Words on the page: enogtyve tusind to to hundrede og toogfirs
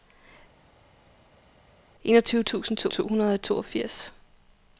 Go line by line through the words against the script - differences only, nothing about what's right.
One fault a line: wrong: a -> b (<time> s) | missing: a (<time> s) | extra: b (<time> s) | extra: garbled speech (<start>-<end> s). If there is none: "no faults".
no faults